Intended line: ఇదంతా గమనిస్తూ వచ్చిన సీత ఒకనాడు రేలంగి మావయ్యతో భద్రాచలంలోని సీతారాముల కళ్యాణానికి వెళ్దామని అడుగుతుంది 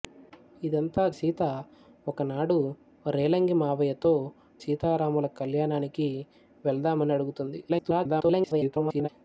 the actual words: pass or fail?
fail